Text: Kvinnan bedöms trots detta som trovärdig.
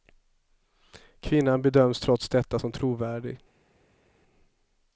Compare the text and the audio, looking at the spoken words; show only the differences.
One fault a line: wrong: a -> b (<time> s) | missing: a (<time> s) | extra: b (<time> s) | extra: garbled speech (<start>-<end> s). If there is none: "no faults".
no faults